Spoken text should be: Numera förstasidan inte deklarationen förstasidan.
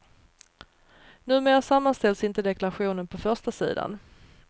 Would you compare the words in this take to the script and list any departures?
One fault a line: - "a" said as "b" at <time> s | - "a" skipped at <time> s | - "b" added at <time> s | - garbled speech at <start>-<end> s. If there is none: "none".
- "förstasidan" said as "sammanställs" at 1.6 s
- "på" added at 3.1 s